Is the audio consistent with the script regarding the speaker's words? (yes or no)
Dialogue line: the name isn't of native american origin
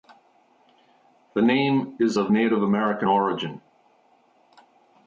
no